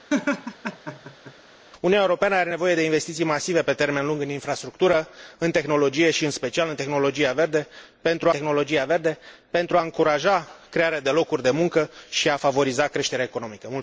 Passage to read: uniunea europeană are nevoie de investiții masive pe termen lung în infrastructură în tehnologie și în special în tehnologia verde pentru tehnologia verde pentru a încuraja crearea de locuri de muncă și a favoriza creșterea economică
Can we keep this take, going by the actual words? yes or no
yes